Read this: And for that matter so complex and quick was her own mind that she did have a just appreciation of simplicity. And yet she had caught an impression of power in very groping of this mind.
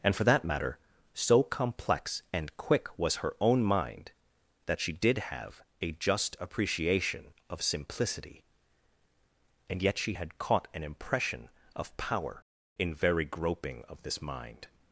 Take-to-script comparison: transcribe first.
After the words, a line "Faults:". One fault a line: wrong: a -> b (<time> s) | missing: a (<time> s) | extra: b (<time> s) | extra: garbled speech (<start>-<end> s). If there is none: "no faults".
And for that matter so complex and quick was her own mind that she did have a just appreciation of simplicity. And yet she had caught an impression of power in very groping of this mind.
Faults:
no faults